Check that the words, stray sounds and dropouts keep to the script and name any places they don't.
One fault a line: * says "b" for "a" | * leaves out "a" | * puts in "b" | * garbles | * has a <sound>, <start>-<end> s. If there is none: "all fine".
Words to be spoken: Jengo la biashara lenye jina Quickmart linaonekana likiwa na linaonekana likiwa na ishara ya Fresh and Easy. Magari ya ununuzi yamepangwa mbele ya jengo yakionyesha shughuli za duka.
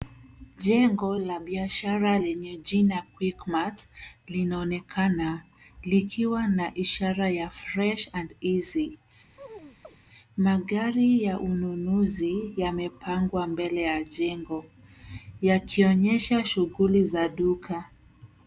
* leaves out "linaonekana likiwa na"
* has a chirp, 9.4-10.0 s